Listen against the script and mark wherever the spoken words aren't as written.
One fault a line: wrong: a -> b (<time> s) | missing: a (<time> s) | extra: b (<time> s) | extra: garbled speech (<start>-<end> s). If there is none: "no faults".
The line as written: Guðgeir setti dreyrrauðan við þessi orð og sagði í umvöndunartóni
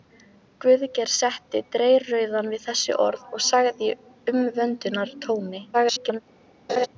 extra: garbled speech (5.7-6.2 s)